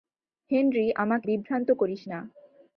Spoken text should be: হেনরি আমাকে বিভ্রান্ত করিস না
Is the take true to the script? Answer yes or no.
yes